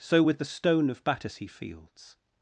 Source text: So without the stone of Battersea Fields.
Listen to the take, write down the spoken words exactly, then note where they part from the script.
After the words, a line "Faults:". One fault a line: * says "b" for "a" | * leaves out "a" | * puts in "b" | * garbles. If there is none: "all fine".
So with the stone of Battersea Fields.
Faults:
* says "with" for "without"